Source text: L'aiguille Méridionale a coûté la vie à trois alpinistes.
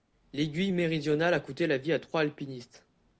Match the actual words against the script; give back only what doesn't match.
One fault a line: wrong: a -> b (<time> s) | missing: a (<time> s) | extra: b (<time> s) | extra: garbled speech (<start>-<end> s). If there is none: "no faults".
no faults